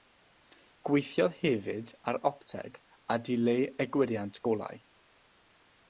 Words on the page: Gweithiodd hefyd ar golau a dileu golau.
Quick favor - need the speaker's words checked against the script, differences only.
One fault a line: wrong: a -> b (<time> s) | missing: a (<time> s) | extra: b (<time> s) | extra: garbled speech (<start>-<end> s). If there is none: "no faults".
wrong: golau -> opteg (2.3 s)
extra: egwyriant (3.9 s)